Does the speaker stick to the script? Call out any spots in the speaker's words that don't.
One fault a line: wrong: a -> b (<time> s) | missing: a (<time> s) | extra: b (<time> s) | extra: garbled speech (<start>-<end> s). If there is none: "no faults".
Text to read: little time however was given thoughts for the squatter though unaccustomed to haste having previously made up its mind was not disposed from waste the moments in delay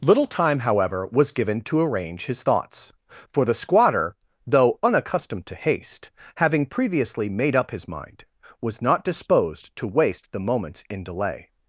extra: to arrange his (1.6 s)
wrong: its -> his (7.7 s)
wrong: from -> to (9.8 s)